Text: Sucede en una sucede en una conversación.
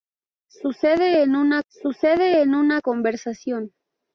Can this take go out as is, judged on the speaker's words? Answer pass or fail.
pass